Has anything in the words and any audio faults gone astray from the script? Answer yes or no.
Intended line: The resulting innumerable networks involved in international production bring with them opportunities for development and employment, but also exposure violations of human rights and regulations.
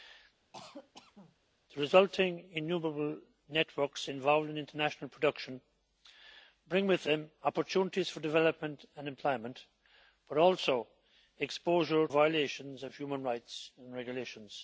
yes